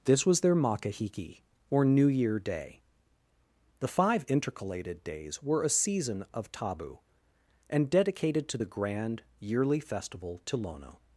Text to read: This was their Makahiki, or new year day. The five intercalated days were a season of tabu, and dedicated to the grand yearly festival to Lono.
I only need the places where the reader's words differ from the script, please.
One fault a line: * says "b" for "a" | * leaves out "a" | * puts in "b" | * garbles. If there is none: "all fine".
all fine